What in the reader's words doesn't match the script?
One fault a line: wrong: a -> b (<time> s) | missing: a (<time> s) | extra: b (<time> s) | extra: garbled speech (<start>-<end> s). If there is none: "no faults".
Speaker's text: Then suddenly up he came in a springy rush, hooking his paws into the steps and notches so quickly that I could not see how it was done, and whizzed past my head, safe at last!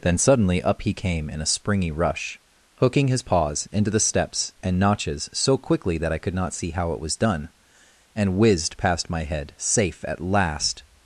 no faults